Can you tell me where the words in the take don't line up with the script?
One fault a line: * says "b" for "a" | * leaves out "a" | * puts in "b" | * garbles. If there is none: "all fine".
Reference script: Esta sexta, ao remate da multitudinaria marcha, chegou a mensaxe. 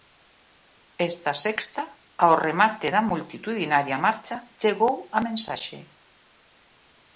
all fine